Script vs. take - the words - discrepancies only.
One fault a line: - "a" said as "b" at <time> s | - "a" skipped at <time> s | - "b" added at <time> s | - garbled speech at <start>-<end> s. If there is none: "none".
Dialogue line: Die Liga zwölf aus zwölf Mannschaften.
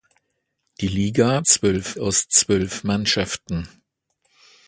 none